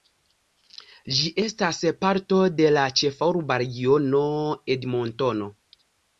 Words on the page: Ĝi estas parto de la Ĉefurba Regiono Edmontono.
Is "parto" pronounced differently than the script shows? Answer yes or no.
no